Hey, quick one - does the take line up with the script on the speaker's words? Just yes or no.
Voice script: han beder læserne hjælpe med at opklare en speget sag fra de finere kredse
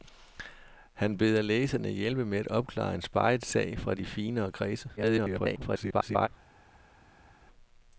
no